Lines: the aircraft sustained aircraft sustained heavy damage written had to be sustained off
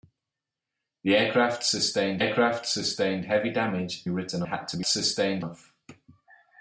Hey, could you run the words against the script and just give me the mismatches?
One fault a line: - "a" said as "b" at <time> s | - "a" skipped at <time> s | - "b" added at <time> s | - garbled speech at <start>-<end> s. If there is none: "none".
none